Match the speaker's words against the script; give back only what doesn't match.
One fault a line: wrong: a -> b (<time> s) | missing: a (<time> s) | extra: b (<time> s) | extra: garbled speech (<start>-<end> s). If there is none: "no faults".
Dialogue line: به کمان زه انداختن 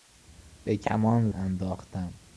missing: زه (1.3 s)